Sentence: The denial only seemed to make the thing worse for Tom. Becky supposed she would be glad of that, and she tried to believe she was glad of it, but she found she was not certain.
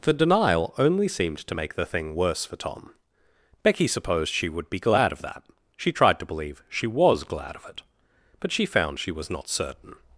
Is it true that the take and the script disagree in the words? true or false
true